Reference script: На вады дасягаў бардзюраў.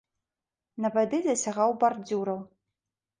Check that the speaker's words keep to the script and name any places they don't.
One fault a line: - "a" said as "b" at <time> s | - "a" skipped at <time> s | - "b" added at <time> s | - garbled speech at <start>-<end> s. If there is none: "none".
none